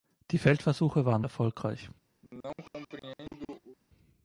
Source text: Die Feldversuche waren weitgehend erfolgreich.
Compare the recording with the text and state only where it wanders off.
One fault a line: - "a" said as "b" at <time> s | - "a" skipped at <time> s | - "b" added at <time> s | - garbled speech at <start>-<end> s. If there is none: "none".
- "weitgehend" skipped at 1.2 s